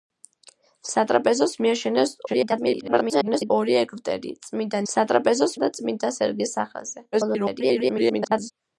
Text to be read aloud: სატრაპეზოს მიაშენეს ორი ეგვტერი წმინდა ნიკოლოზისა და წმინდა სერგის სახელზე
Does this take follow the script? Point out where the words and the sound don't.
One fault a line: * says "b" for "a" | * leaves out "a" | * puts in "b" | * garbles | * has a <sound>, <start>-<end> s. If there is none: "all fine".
* garbles
* says "სატრაპეზოს" for "ნიკოლოზისა"
* garbles